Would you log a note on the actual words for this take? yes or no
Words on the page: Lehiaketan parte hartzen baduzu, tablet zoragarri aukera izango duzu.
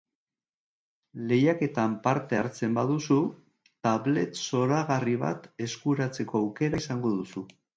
yes